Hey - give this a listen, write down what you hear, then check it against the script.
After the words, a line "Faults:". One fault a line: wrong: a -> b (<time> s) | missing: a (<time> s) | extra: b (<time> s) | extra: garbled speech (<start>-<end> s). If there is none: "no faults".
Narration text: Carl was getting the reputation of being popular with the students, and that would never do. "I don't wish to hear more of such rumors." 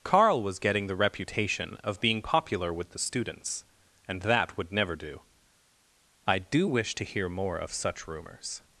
Carl was getting the reputation of being popular with the students, and that would never do. "I do wish to hear more of such rumors."
Faults:
wrong: don't -> do (6.4 s)